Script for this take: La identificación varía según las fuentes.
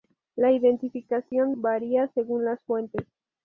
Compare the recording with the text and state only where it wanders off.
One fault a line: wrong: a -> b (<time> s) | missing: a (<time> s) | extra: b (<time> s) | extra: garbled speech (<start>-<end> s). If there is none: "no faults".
no faults